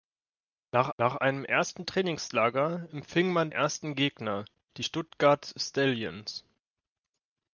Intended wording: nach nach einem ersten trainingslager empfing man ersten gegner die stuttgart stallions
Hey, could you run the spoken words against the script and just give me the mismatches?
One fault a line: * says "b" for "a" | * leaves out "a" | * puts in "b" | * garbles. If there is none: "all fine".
all fine